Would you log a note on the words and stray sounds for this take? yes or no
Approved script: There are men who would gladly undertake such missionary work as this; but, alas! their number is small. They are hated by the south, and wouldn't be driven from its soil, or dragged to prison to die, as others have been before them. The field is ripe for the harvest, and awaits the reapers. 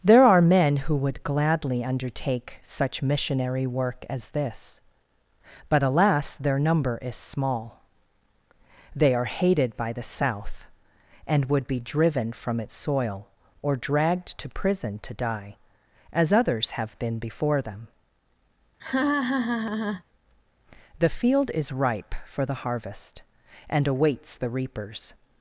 yes